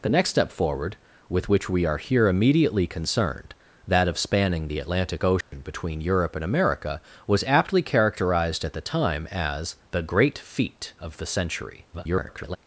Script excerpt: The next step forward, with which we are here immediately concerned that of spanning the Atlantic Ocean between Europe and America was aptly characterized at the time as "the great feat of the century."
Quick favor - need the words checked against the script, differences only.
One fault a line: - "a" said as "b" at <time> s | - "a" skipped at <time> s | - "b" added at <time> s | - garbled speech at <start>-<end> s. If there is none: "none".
- garbled speech at 11.9-12.6 s